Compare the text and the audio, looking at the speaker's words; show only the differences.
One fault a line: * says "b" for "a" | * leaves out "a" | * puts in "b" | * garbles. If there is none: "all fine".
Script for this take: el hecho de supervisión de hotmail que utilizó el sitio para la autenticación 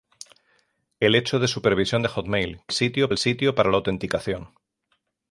* says "sitio" for "utilizó"